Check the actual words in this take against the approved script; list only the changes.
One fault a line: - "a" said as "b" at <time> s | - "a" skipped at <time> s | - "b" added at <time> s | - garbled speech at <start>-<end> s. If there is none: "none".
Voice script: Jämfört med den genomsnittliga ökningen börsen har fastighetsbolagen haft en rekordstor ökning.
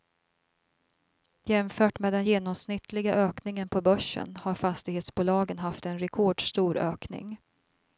- "på" added at 3.7 s